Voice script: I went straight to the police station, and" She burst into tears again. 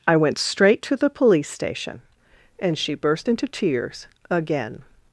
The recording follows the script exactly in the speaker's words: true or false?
true